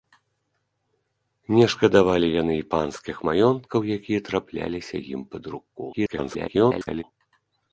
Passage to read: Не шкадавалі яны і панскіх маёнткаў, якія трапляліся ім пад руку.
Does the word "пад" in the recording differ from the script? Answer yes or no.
no